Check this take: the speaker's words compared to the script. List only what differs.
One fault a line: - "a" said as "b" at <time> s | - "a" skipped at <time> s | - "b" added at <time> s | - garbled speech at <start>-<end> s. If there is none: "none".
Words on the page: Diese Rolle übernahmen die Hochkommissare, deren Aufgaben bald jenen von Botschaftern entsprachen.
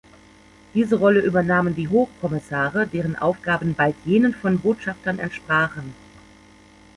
none